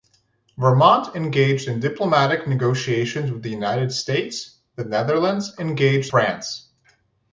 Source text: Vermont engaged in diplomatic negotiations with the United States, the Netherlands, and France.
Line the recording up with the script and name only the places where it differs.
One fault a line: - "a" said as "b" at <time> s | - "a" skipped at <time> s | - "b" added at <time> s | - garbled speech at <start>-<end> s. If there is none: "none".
- "and" said as "engaged" at 5.6 s